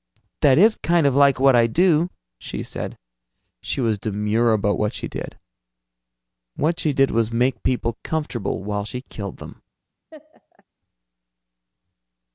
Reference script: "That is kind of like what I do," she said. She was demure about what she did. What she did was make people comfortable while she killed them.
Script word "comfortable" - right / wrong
right